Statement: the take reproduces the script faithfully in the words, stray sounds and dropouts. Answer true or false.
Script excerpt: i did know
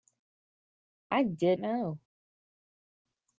true